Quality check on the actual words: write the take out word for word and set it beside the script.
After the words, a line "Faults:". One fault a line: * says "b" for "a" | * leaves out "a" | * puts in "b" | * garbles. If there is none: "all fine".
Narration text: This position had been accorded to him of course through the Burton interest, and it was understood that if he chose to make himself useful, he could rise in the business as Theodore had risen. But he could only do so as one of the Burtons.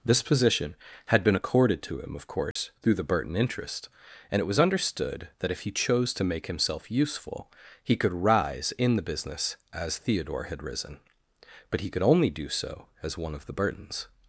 This position had been accorded to him of course through the Burton interest, and it was understood that if he chose to make himself useful, he could rise in the business as Theodore had risen. But he could only do so as one of the Burtons.
Faults:
all fine